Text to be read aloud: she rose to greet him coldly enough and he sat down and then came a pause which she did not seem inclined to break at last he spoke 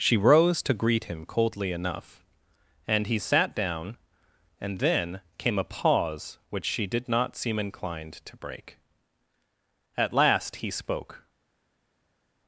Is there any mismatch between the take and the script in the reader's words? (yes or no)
no